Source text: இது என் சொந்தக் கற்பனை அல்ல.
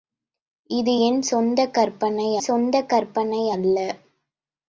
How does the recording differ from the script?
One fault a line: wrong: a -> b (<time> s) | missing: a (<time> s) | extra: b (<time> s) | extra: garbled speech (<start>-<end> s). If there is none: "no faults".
extra: சொந்தக் கற்பனை (2.4 s)